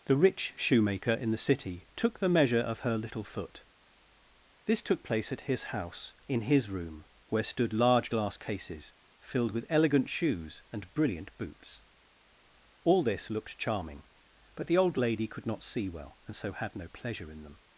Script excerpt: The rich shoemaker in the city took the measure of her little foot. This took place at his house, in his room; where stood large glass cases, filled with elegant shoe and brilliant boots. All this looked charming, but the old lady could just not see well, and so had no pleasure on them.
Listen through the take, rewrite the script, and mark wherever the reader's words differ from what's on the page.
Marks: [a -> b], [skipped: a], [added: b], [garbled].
The rich shoemaker in the city took the measure of her little foot. This took place at his house, in his room; where stood large glass cases, filled with elegant [shoe -> shoes] and brilliant boots. All this looked charming, but the old lady could [skipped: just] not see well, and so had no pleasure [on -> in] them.